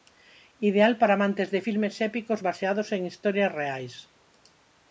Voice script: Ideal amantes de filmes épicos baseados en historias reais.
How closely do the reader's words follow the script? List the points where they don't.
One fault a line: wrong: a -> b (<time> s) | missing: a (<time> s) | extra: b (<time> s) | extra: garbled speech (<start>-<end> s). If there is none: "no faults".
extra: para (1.0 s)